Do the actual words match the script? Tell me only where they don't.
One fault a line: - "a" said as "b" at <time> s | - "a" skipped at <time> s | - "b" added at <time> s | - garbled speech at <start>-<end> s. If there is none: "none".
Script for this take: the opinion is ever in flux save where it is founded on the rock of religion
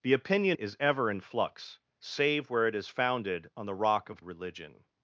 none